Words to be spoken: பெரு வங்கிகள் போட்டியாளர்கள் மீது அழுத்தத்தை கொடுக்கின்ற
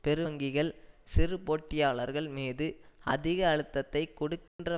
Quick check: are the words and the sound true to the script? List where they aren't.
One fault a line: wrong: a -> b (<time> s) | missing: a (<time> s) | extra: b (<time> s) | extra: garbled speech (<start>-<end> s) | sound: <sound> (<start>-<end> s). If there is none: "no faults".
extra: சிறு (1.0 s)
extra: அதிக (3.0 s)
sound: dropout (4.5-4.6 s)